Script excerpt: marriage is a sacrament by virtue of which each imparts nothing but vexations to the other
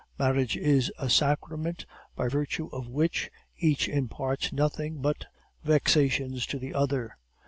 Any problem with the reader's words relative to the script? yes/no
no